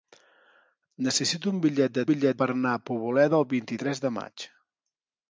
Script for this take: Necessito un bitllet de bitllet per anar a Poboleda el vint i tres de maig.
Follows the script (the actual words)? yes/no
yes